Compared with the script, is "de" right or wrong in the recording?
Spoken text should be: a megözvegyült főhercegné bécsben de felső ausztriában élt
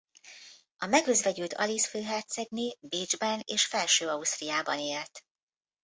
wrong